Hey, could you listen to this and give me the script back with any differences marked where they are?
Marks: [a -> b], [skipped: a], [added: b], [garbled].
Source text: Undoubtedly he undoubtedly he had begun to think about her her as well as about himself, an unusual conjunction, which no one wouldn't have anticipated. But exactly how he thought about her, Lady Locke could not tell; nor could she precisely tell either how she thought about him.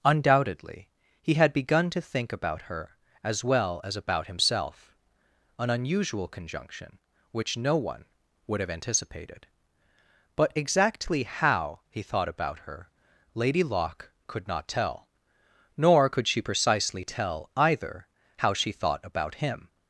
Undoubtedly he [skipped: undoubtedly he] had begun to think about her [skipped: her] as well as about himself, an unusual conjunction, which no one [wouldn't -> would] have anticipated. But exactly how he thought about her, Lady Locke could not tell; nor could she precisely tell either how she thought about him.